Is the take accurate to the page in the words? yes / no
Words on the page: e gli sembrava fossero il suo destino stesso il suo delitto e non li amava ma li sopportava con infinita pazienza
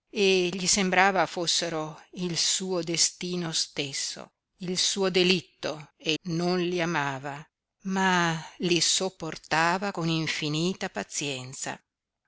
yes